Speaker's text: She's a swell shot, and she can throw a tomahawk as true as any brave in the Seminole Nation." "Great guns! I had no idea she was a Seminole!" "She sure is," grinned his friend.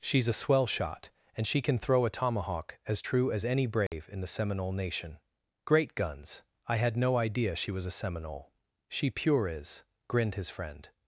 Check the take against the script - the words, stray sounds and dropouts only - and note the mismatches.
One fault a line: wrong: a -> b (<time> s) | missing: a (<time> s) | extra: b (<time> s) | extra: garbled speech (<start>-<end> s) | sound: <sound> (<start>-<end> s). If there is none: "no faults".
sound: dropout (3.9-3.9 s)
wrong: sure -> pure (9.1 s)